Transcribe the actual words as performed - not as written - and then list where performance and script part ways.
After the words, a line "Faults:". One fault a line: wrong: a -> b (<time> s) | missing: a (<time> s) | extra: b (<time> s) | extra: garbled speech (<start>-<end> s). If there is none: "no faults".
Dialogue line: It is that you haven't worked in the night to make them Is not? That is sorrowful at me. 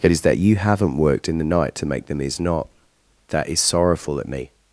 It is that you haven't worked in the night to make them Is not? That is sorrowful at me.
Faults:
no faults